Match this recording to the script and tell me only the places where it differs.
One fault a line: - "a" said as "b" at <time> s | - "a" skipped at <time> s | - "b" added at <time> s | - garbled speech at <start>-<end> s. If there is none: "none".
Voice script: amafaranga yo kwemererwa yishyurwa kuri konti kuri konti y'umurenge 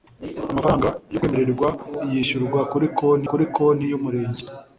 none